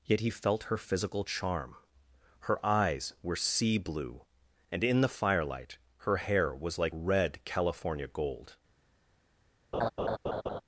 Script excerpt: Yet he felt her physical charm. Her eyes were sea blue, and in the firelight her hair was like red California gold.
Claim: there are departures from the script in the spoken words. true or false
false